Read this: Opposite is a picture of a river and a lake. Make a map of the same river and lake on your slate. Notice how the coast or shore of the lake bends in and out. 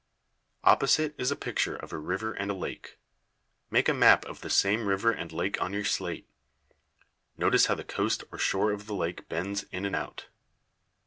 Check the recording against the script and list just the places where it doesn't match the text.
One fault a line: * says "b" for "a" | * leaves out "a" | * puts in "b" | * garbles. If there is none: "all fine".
all fine